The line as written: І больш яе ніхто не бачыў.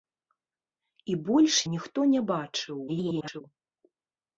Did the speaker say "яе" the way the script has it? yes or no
no